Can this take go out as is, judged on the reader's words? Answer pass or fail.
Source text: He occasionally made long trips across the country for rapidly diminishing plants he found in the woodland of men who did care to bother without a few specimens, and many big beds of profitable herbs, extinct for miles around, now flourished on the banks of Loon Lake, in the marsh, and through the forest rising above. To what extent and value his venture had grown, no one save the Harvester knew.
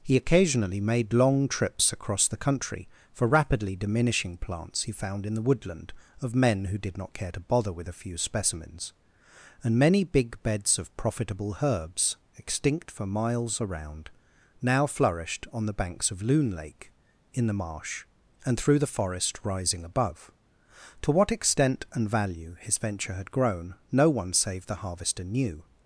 fail